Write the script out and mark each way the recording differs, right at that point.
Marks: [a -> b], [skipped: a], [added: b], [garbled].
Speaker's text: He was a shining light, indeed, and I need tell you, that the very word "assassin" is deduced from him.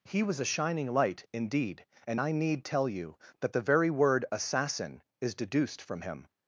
He was a shining light, indeed, and I need tell you, that the very word "assassin" is deduced from him.